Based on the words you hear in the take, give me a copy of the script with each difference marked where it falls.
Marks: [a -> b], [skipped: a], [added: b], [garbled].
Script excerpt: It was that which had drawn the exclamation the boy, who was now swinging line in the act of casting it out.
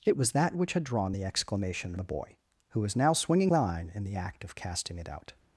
It was that which had drawn the exclamation the boy, who was now swinging line in the act of casting it out.